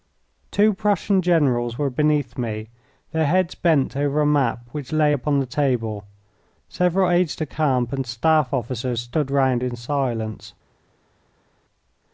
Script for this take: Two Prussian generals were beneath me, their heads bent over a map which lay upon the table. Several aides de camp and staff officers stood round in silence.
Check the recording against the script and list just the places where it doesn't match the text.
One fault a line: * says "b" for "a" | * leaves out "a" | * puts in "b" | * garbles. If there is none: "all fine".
all fine